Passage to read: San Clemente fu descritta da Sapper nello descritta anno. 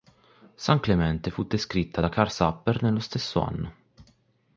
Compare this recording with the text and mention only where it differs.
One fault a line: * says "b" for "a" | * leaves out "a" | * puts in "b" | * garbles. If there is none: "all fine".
* puts in "Karl"
* says "stesso" for "descritta"